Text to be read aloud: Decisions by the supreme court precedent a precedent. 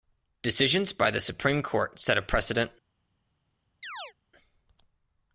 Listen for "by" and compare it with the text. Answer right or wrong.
right